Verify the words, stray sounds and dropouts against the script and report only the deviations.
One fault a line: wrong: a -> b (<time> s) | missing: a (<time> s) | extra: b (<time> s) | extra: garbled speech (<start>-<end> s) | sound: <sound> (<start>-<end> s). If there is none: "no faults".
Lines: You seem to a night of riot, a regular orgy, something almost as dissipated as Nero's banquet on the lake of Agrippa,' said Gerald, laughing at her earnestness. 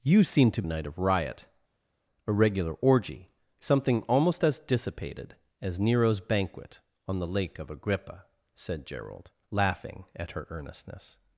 no faults